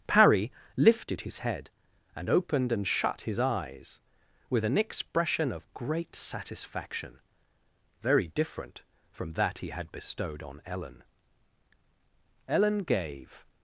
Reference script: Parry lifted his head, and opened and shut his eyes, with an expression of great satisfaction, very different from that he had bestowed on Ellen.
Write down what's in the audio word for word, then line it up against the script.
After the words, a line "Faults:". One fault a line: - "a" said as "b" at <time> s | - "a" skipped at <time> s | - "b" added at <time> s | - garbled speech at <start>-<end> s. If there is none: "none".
Parry lifted his head, and opened and shut his eyes, with an expression of great satisfaction, very different from that he had bestowed on Ellen. Ellen gave
Faults:
- "Ellen gave" added at 12.5 s